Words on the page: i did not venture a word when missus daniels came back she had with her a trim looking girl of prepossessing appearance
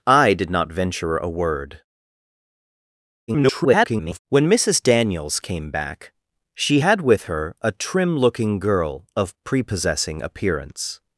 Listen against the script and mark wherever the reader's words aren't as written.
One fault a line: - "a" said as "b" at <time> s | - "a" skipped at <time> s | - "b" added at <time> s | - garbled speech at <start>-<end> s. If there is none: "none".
- garbled speech at 3.3-4.2 s